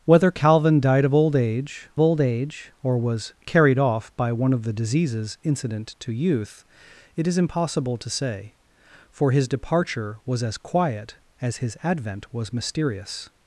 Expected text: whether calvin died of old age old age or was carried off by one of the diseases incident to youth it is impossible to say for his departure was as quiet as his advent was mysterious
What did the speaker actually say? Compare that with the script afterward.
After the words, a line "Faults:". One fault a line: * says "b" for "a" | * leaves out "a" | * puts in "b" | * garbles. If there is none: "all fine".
whether calvin died of old age old age or was carried off by one of the diseases incident to youth it is impossible to say for his departure was as quiet as his advent was mysterious
Faults:
all fine